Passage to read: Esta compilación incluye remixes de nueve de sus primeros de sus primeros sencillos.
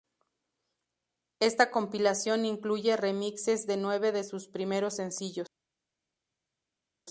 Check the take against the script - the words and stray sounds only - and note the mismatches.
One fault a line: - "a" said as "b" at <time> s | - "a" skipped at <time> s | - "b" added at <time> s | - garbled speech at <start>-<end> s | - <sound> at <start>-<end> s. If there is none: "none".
- "de sus primeros" skipped at 5.0 s